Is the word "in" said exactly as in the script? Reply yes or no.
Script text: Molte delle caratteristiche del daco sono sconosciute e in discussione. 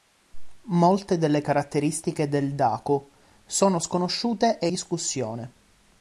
no